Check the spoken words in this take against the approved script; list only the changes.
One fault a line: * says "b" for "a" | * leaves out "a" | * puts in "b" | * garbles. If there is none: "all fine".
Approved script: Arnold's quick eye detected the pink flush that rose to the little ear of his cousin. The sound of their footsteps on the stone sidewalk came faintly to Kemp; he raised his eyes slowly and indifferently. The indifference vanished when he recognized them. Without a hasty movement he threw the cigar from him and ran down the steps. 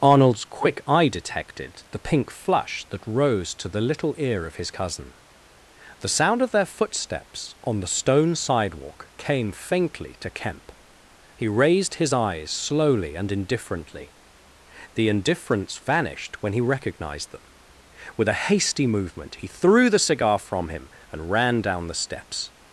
* says "With" for "Without"